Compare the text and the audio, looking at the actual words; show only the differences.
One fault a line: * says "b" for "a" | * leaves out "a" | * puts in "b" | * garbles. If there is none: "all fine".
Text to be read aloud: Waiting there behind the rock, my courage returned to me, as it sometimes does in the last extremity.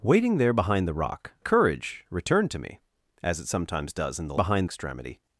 * leaves out "my"
* says "behind" for "last"